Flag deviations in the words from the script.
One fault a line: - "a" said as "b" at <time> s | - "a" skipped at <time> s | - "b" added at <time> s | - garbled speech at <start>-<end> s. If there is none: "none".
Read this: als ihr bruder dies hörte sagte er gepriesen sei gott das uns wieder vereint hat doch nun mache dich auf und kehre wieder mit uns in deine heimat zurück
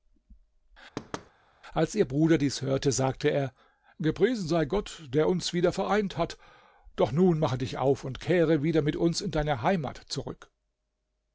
- "das" said as "der" at 5.1 s